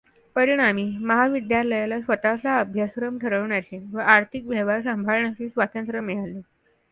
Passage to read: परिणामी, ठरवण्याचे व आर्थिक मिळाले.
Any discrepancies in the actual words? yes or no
yes